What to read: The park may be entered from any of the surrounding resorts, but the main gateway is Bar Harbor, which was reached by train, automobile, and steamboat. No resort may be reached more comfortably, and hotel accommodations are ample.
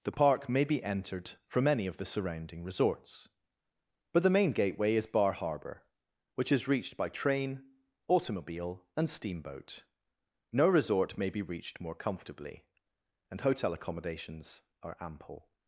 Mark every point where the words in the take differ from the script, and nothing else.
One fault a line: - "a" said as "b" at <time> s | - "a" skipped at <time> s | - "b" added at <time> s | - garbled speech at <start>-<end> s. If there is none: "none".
- "was" said as "is" at 6.5 s